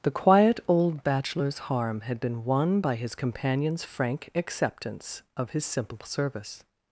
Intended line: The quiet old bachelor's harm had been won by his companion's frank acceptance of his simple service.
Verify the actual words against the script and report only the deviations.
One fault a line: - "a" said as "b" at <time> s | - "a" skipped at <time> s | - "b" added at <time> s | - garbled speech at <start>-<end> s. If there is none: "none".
none